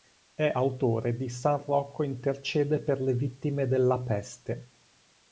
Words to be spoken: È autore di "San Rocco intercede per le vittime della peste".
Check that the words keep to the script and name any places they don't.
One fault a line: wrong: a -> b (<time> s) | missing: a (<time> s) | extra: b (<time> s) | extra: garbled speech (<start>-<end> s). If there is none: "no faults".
no faults